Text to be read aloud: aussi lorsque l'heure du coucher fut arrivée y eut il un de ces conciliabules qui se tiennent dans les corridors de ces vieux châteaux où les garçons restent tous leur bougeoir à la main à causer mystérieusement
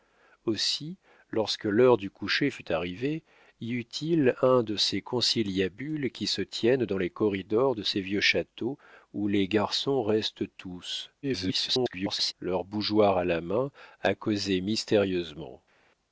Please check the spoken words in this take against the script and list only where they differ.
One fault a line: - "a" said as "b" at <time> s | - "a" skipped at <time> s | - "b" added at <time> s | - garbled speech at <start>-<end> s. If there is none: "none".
- garbled speech at 11.2-12.3 s